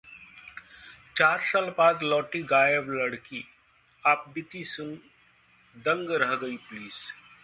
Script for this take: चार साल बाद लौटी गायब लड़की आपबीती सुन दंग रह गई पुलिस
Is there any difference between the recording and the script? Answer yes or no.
no